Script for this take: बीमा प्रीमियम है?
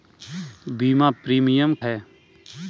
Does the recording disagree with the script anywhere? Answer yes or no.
no